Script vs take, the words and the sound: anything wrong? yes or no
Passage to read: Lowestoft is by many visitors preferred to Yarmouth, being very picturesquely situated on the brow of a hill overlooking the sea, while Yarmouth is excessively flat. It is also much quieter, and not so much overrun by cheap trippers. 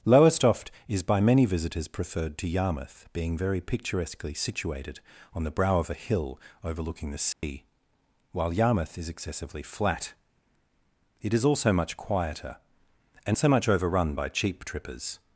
yes